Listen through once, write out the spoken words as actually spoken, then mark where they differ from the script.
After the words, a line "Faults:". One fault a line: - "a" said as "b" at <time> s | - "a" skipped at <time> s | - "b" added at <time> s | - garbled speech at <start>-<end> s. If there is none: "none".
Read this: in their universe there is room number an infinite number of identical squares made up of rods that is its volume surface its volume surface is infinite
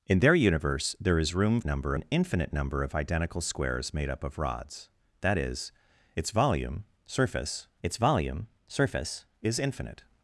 in their universe there is room number an infinite number of identical squares made up of rods that is its volume surface its volume surface is infinite
Faults:
none